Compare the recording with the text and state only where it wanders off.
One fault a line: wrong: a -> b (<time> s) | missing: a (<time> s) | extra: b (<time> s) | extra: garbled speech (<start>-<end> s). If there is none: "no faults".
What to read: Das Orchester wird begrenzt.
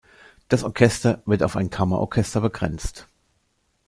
extra: auf ein Kammerorchester (1.4 s)